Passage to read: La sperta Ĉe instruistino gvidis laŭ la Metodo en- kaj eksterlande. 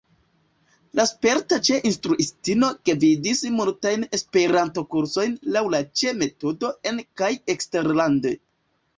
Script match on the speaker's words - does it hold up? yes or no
no